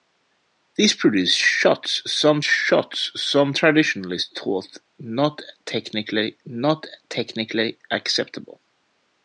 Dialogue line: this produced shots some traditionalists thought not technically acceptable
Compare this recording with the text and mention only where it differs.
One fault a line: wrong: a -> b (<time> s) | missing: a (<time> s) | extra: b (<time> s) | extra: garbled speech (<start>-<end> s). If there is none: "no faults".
extra: shots some (2.4 s)
extra: not technically (6.4 s)